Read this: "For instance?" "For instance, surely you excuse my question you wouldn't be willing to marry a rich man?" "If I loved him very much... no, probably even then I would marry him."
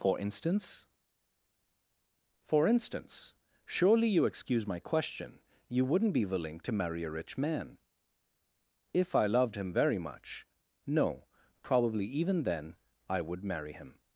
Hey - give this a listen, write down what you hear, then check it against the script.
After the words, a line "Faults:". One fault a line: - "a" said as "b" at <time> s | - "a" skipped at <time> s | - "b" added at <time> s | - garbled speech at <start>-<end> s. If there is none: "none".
"For instance?" "For instance, surely you excuse my question you wouldn't be willing to marry a rich man?" "If I loved him very much... no, probably even then I would marry him."
Faults:
none